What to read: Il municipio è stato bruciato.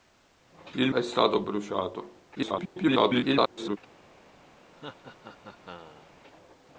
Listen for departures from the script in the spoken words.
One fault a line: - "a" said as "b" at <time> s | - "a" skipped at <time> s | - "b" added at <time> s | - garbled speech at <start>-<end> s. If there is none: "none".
- "municipio" skipped at 0.9 s
- garbled speech at 2.4-3.8 s